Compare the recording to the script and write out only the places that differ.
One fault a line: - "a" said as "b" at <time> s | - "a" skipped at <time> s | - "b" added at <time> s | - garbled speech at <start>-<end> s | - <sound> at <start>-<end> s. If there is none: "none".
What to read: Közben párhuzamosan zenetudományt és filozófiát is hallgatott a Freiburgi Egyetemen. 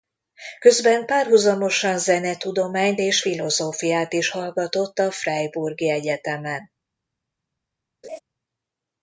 - laugh at 8.0-8.2 s